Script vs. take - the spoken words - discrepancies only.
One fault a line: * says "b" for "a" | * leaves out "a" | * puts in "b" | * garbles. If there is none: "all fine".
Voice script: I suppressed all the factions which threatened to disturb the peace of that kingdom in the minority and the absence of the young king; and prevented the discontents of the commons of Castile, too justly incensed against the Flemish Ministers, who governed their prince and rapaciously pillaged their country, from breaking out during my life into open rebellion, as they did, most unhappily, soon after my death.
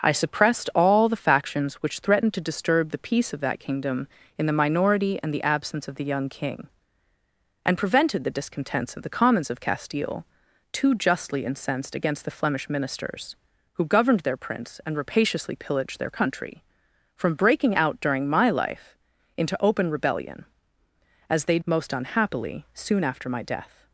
* leaves out "did"